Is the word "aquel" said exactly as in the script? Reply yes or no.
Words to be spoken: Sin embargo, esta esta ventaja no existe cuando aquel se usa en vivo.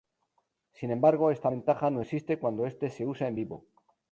no